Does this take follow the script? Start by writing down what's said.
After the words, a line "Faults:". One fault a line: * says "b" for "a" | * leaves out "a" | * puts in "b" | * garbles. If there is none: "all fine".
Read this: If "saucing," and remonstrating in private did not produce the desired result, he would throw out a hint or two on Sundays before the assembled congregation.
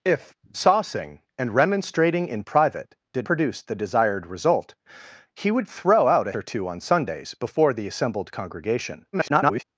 If "saucing," and remonstrating in private did produce the desired result, he would throw out a or two on Sundays before the assembled congregation. [garbled]
Faults:
* leaves out "not"
* leaves out "hint"
* garbles